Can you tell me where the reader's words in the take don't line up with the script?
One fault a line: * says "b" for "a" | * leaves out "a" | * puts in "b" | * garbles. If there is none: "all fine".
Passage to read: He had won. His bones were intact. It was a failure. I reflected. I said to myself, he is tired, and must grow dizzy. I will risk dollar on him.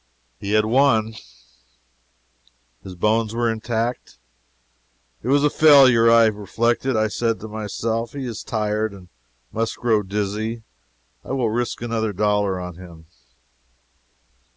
* puts in "another"